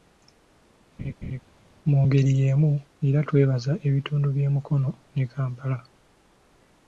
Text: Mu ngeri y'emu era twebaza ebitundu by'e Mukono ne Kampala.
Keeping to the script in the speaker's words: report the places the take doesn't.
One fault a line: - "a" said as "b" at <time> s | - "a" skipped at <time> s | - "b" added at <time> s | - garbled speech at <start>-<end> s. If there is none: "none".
none